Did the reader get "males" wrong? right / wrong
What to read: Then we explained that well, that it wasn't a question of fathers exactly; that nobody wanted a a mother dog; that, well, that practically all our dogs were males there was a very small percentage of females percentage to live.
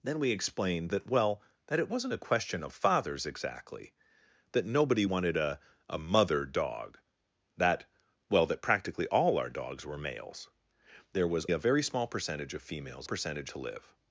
right